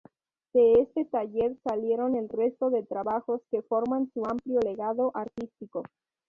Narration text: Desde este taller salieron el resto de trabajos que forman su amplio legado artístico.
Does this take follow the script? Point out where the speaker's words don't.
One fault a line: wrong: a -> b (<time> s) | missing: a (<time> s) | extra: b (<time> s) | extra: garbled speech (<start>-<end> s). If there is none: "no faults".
wrong: Desde -> De (0.5 s)